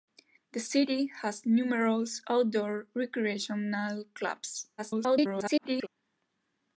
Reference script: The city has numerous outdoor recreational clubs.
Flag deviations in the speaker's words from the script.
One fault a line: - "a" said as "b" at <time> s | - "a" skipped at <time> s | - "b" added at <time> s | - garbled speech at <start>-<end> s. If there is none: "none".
- garbled speech at 4.8-5.9 s